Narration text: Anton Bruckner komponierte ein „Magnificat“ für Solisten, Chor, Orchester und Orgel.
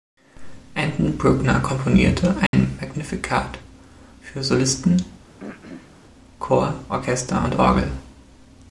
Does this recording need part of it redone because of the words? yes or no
no